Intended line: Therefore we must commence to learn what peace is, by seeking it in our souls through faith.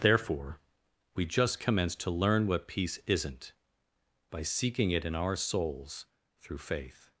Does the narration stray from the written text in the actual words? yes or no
yes